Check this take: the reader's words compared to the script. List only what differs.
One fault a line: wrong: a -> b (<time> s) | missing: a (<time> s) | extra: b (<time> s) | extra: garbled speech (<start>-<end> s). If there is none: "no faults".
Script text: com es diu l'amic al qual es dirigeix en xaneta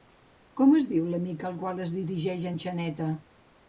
no faults